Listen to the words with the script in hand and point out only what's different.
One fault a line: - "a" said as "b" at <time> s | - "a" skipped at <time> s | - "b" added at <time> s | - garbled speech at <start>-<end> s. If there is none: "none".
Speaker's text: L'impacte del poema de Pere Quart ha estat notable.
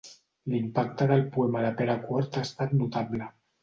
none